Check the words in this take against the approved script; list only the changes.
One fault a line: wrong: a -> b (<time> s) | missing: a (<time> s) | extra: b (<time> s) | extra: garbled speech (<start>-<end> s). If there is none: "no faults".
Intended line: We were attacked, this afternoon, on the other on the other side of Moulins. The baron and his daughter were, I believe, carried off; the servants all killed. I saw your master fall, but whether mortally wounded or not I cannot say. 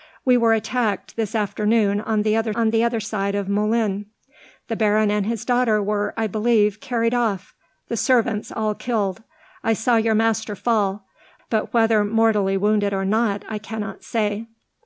no faults